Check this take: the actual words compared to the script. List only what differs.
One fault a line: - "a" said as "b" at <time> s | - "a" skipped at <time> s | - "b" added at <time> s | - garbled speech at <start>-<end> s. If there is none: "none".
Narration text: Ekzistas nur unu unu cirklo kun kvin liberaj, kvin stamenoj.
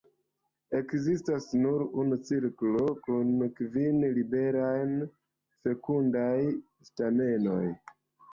- "unu" skipped at 2.2 s
- "kvin" said as "fekundaj" at 5.6 s